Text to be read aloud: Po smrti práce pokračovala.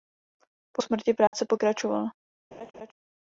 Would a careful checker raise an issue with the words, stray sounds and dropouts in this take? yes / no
yes